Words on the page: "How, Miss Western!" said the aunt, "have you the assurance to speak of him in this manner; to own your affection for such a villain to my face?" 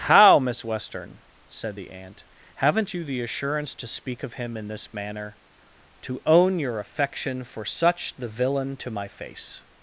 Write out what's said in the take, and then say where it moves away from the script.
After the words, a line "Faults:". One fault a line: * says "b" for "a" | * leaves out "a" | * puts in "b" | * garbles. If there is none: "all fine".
"How, Miss Western!" said the aunt, "haven't you the assurance to speak of him in this manner; to own your affection for such the villain to my face?"
Faults:
* says "haven't" for "have"
* says "the" for "a"